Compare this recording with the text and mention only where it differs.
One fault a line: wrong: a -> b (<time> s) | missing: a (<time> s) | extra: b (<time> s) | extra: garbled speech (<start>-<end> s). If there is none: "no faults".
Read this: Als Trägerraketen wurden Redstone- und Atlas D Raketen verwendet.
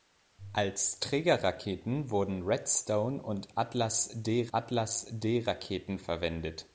extra: Atlas D (4.5 s)